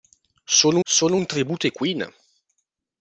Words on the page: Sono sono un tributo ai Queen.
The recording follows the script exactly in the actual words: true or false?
true